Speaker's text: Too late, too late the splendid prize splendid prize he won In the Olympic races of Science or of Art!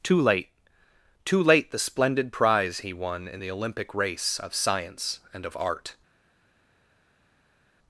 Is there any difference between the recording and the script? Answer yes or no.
yes